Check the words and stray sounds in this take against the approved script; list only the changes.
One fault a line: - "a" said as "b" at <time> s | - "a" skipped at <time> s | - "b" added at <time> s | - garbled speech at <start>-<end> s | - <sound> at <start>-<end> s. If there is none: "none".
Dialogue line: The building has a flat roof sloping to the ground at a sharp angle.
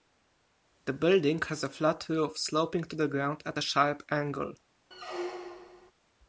- squeak at 4.9-5.9 s